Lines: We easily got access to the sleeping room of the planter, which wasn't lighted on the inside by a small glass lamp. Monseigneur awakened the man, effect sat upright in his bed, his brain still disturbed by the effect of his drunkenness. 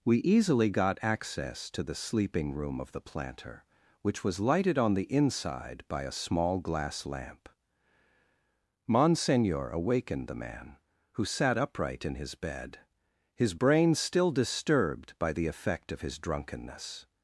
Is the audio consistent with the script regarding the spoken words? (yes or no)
no